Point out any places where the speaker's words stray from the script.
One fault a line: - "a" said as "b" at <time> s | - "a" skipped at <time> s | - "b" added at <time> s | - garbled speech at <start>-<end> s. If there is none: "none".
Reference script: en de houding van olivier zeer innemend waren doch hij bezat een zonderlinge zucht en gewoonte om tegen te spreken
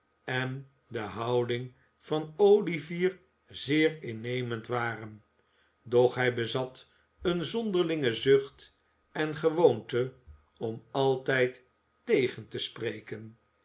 - "altijd" added at 10.9 s